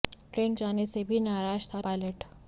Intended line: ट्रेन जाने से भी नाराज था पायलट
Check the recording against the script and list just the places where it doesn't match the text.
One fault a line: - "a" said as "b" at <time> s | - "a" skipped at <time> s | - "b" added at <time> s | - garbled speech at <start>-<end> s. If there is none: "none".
none